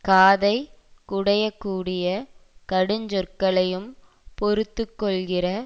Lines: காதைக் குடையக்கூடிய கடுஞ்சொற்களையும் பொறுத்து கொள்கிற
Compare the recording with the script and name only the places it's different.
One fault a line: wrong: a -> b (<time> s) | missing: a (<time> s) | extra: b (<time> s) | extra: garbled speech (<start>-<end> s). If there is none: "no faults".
no faults